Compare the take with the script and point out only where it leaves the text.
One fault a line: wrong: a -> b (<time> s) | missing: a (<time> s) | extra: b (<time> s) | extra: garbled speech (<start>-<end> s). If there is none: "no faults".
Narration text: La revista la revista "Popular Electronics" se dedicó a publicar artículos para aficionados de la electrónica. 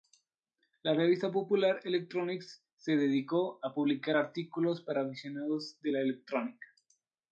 missing: la revista (1.3 s)